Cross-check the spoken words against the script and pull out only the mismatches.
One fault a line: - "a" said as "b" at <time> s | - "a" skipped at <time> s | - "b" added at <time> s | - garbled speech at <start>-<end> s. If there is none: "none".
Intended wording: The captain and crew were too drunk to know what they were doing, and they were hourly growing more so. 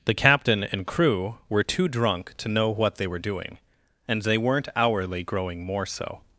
- "were" said as "weren't" at 4.4 s